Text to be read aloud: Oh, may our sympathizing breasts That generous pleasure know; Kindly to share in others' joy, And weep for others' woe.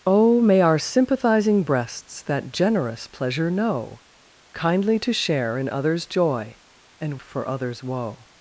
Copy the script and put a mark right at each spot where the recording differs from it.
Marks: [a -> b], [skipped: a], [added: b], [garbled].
Oh, may our sympathizing breasts That generous pleasure know; Kindly to share in others' joy, And [skipped: weep] for others' woe.